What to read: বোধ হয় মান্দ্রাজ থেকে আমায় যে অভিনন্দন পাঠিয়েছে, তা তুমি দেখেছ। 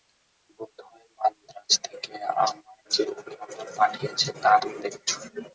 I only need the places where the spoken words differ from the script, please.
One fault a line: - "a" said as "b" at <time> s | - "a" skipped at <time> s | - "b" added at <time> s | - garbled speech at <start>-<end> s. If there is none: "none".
none